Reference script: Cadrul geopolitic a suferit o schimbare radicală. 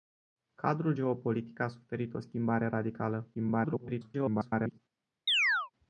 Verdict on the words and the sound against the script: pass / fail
fail